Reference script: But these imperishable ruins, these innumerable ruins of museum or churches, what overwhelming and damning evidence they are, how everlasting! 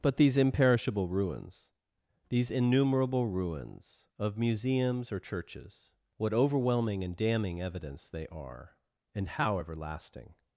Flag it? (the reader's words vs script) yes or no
yes